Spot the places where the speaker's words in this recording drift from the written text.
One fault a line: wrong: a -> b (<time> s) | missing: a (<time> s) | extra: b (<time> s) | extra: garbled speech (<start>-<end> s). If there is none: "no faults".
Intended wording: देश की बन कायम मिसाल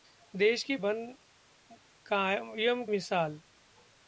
no faults